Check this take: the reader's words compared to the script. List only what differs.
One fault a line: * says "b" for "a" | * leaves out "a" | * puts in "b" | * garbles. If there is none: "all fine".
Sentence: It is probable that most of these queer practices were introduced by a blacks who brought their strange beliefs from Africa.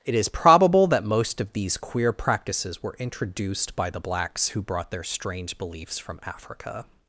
* says "the" for "a"